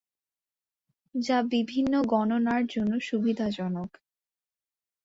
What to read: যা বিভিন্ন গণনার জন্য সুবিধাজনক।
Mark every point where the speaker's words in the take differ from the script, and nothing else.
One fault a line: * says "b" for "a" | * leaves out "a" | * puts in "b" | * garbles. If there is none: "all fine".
all fine